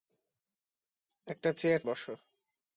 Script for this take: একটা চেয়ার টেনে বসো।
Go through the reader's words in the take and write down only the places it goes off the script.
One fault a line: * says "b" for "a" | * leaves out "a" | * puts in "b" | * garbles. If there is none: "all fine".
* leaves out "টেনে"